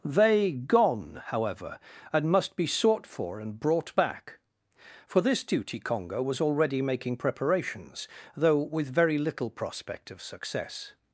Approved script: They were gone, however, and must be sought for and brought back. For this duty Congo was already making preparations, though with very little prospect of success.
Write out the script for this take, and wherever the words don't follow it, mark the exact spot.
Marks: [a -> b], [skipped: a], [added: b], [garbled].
They [skipped: were] gone, however, and must be sought for and brought back. For this duty Congo was already making preparations, though with very little prospect of success.